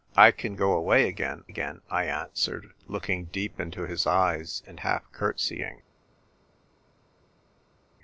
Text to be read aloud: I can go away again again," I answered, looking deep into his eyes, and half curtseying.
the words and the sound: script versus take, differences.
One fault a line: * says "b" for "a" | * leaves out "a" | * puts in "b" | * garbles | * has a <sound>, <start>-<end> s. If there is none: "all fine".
all fine